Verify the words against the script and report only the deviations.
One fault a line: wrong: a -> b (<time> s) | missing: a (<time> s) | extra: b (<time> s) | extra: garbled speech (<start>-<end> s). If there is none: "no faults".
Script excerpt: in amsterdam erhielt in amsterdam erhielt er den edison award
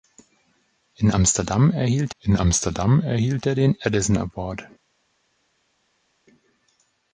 no faults